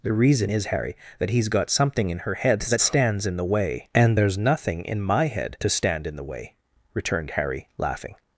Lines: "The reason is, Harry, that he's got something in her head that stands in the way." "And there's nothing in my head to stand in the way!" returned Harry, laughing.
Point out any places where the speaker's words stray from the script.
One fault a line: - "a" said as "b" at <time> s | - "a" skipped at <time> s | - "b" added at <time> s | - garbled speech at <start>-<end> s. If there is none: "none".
none